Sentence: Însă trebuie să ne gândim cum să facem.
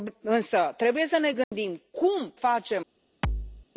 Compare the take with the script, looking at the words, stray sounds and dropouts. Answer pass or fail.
fail